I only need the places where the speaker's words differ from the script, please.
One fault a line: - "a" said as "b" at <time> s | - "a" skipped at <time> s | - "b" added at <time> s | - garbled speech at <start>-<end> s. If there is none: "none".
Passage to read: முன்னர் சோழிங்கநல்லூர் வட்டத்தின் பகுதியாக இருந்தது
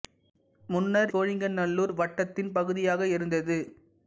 none